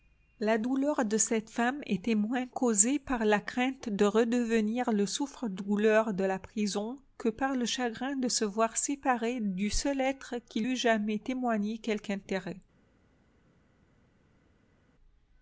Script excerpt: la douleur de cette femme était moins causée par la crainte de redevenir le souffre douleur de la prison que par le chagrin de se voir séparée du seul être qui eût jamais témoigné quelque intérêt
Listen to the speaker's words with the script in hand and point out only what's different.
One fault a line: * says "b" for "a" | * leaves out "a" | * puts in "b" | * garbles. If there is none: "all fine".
all fine